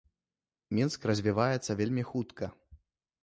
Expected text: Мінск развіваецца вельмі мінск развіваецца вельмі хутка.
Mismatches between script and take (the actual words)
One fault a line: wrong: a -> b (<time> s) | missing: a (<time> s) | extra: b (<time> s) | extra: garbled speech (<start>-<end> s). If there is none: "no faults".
missing: мінск развіваецца вельмі (2.0 s)